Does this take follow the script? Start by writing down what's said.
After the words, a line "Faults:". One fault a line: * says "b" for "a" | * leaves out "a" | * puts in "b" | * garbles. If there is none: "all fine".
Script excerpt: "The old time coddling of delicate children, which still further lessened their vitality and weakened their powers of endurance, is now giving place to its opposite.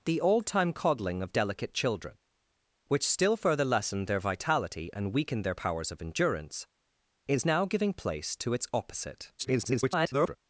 "The old time coddling of delicate children, which still further lessened their vitality and weakened their powers of endurance, is now giving place to its opposite. [garbled]
Faults:
* garbles